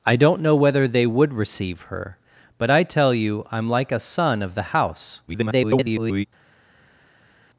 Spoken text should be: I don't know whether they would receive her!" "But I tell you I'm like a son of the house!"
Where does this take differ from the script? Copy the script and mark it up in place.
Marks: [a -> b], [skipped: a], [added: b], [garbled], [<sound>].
I don't know whether they would receive her!" "But I tell you I'm like a son of the house!" [garbled]